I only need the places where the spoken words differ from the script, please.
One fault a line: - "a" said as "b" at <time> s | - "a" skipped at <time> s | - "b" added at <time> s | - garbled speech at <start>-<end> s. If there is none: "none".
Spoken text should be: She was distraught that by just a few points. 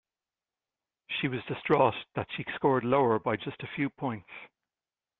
- "she scored lower" added at 2.4 s